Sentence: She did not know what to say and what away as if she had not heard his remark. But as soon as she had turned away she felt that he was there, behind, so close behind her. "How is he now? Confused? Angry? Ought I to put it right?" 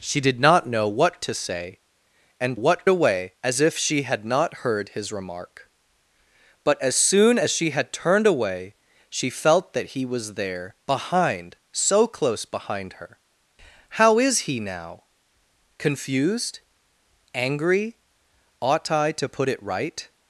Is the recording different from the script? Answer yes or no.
no